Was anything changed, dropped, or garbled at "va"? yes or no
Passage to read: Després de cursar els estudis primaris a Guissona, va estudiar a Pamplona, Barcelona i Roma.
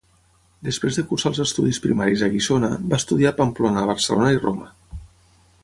no